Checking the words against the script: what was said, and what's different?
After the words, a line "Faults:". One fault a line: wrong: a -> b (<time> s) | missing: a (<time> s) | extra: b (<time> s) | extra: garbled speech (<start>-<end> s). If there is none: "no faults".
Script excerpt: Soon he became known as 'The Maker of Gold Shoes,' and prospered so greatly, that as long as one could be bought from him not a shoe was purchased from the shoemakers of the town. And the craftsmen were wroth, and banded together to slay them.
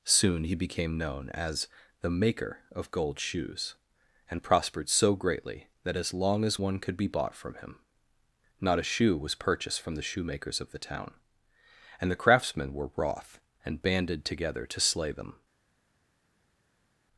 Soon he became known as 'The Maker of Gold Shoes,' and prospered so greatly, that as long as one could be bought from him not a shoe was purchased from the shoemakers of the town. And the craftsmen were wroth, and banded together to slay them.
Faults:
no faults